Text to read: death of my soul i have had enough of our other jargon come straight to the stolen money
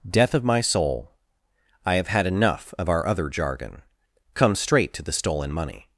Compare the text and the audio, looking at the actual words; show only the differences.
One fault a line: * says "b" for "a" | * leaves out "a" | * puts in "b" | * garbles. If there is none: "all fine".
all fine